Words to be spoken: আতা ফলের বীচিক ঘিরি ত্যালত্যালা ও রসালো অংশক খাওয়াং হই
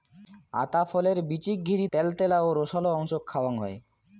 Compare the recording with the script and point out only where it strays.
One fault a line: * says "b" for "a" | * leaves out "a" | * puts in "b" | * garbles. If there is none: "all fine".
all fine